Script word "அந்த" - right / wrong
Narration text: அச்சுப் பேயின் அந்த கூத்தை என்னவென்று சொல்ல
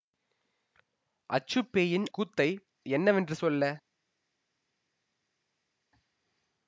wrong